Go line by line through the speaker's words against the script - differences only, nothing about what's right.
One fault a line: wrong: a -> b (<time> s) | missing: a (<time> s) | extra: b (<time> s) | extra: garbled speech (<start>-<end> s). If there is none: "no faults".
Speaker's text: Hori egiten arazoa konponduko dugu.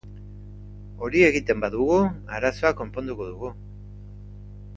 extra: badugu (1.6 s)